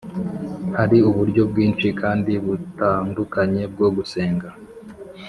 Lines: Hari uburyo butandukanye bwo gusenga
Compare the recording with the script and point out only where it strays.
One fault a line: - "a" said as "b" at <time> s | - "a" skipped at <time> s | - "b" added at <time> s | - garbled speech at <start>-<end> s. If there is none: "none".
- "bwinshi kandi" added at 1.5 s